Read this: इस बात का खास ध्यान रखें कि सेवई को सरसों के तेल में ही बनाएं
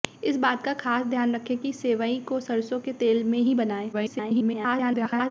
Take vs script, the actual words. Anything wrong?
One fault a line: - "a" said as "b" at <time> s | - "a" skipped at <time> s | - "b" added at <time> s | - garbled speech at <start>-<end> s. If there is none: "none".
- garbled speech at 3.9-5.3 s